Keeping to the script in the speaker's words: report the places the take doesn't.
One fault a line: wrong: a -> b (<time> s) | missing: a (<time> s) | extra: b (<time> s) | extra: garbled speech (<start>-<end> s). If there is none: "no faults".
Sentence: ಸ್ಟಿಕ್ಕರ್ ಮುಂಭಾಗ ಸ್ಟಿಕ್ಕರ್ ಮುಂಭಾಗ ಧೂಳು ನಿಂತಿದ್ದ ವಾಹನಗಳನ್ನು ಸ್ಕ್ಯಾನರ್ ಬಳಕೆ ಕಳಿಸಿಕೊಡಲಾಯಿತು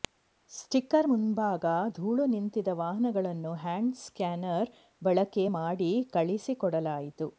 missing: ಸ್ಟಿಕ್ಕರ್ ಮುಂಭಾಗ (1.7 s)
extra: ಹ್ಯಾಂಡ್ (3.5 s)
extra: ಮಾಡಿ (5.5 s)